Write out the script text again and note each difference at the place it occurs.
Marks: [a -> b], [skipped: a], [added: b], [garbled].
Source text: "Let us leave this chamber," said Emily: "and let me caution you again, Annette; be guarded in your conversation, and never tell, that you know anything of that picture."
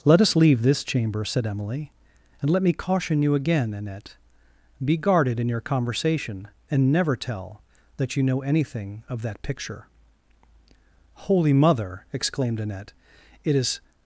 "Let us leave this chamber," said Emily: "and let me caution you again, Annette; be guarded in your conversation, and never tell, that you know anything of that picture." [added: Holy Mother exclaimed Annette it is]